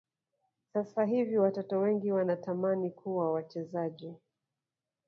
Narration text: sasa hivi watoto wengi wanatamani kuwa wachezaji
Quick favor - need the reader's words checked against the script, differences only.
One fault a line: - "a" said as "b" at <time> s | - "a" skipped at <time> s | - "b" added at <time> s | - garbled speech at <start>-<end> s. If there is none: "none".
none